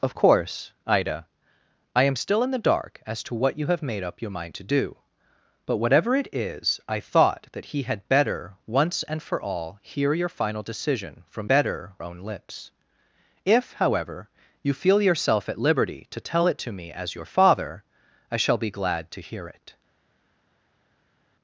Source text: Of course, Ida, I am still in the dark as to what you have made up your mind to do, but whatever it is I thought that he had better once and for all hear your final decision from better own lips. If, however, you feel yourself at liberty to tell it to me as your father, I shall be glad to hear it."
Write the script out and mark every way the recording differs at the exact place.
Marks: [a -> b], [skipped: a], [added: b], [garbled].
Of course, Ida, I am still in the dark as to what you have made up your mind to do, but whatever it is I thought that he had better once and for all hear your final decision from better own lips. If, however, you feel yourself at liberty to tell it to me as your father, I shall be glad to hear it."